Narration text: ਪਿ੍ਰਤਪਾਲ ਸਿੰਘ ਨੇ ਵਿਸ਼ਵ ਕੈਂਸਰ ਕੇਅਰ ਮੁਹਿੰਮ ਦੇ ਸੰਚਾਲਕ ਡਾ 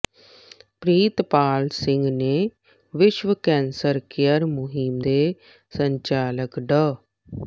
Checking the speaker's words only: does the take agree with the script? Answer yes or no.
yes